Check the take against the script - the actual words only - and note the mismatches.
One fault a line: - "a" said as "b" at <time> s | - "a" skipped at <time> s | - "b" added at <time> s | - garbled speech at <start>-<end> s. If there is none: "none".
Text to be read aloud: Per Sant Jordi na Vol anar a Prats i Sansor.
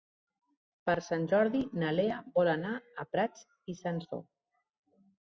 - "Lea" added at 2.0 s